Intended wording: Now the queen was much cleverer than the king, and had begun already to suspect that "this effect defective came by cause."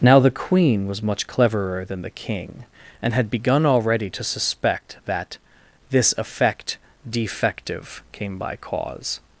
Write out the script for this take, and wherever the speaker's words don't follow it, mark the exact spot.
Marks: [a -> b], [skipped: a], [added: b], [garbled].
Now the queen was much cleverer than the king, and had begun already to suspect that "this effect defective came by cause."